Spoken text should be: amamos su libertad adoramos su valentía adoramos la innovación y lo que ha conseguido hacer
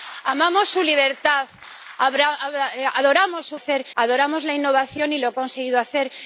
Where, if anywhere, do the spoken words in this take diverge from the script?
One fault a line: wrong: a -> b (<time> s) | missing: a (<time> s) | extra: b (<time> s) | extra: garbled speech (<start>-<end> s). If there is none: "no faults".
wrong: valentía -> hacer (3.5 s)
missing: que (5.3 s)